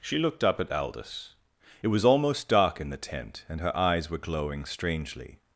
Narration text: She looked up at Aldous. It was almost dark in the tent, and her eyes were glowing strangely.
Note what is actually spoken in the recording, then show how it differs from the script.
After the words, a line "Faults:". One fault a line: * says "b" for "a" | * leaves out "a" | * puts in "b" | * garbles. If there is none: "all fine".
She looked up at Aldous. It was almost dark in the tent, and her eyes were glowing strangely.
Faults:
all fine